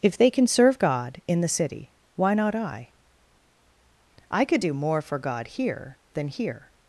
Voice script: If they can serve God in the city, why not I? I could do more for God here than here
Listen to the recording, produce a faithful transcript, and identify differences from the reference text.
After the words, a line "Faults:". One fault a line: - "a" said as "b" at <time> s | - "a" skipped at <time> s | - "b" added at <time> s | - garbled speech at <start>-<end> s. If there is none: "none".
If they can serve God in the city, why not I? I could do more for God here than here
Faults:
none